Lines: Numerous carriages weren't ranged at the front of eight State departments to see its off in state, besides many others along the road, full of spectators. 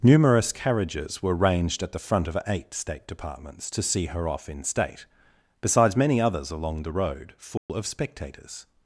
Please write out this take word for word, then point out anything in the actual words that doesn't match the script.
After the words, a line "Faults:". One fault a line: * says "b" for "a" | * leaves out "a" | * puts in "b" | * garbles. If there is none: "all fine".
Numerous carriages were ranged at the front of eight State departments to see her off in state, besides many others along the road, full of spectators.
Faults:
* says "were" for "weren't"
* says "her" for "its"